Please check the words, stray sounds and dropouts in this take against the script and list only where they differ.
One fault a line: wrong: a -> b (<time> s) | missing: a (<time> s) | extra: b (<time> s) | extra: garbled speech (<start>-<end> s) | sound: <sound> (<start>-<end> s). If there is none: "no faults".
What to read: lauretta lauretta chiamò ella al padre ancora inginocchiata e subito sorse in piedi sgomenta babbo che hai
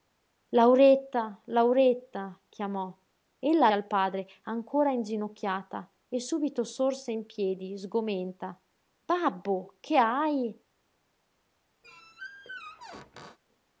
sound: squeak (11.8-13.4 s)